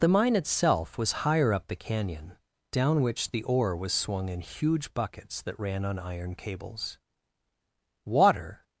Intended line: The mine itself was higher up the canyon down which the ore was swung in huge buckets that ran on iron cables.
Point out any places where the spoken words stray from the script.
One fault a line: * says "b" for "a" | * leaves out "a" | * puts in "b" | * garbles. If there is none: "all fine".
* puts in "Water"